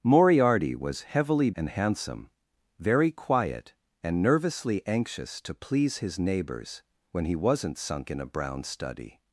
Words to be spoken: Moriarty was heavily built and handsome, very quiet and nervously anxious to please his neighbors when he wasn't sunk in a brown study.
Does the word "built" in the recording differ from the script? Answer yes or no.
yes